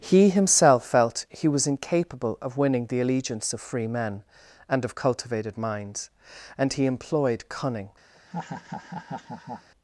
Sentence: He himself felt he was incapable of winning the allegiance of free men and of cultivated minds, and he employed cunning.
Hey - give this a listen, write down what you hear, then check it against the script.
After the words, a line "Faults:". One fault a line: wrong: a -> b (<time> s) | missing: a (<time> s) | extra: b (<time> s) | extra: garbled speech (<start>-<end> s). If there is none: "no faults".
He himself felt he was incapable of winning the allegiance of free men and of cultivated minds, and he employed cunning.
Faults:
no faults